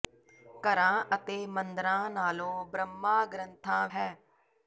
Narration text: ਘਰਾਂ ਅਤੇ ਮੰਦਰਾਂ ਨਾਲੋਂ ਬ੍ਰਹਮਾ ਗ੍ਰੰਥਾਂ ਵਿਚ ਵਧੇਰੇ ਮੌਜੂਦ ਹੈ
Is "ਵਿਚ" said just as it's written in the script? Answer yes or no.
no